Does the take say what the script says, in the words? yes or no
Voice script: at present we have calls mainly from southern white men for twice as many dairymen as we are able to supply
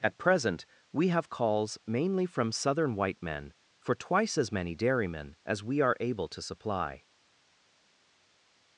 yes